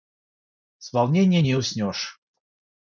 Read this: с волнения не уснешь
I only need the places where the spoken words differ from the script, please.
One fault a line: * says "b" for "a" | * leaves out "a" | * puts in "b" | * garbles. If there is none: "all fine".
all fine